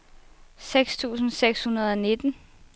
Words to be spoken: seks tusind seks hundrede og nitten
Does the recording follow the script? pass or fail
pass